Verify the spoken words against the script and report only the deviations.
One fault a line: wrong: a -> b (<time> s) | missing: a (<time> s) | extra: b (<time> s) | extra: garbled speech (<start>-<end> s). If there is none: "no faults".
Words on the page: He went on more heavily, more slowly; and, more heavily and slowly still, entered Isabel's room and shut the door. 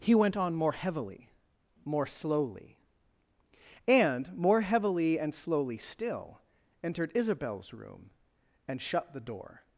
no faults